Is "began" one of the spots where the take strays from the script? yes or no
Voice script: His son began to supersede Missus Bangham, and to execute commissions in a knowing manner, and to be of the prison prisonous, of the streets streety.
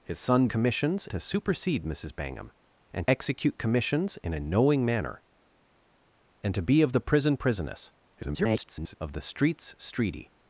yes